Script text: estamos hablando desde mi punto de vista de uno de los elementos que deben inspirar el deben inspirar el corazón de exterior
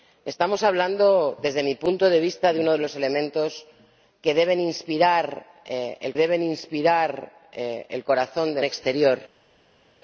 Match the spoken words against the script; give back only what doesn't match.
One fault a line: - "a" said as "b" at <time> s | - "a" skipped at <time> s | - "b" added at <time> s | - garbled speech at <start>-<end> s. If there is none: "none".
none